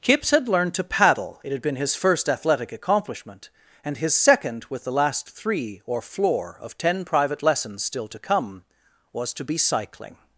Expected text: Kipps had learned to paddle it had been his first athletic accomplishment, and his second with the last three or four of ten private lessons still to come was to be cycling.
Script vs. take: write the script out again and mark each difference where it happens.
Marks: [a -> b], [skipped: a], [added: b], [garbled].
Kipps had learned to paddle it had been his first athletic accomplishment, and his second with the last three or [four -> floor] of ten private lessons still to come was to be cycling.